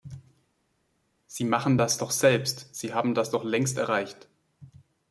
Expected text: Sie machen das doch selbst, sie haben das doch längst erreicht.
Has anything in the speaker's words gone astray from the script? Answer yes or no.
no